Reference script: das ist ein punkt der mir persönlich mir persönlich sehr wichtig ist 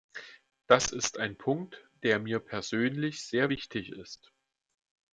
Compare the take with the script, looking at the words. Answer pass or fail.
fail